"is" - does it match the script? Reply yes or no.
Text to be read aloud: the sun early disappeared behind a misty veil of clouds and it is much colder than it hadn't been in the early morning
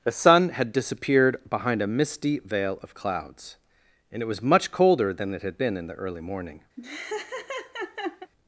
no